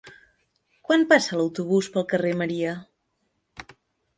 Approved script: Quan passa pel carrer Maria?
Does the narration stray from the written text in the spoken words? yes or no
yes